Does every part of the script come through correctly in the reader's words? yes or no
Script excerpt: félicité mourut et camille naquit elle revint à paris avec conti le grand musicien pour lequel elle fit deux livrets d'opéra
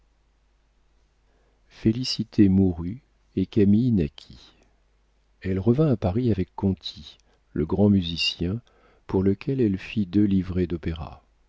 yes